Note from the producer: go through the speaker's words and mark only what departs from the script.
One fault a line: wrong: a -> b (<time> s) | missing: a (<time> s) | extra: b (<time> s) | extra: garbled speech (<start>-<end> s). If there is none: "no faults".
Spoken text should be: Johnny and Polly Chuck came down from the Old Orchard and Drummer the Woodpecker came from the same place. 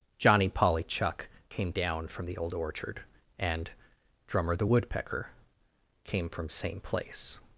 missing: and (0.5 s)
missing: the (6.5 s)